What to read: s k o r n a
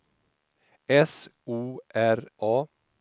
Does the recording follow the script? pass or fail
fail